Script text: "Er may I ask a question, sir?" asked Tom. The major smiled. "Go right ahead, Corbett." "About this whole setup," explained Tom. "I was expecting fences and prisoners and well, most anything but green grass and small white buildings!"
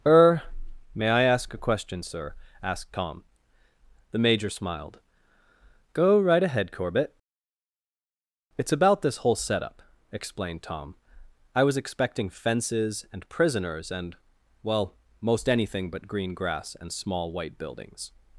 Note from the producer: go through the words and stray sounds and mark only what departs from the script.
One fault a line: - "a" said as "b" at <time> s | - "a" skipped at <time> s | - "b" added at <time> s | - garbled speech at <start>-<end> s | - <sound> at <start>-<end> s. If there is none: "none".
- "It's" added at 8.6 s